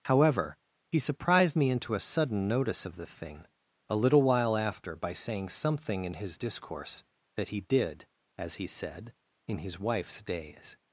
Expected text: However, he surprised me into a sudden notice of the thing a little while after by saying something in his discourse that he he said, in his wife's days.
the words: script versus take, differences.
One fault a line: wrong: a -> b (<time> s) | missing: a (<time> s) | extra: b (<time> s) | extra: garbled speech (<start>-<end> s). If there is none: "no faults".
extra: did as (7.6 s)